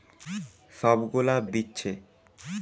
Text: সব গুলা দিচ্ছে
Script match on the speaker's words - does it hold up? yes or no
yes